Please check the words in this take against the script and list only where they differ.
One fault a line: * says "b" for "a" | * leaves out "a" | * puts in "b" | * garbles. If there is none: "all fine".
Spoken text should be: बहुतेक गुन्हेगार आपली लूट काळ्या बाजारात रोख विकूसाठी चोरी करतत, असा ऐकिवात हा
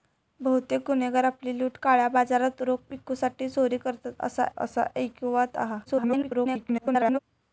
* puts in "असा"
* garbles